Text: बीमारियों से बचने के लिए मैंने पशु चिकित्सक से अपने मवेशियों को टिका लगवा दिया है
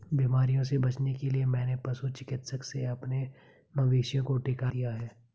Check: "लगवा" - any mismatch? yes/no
yes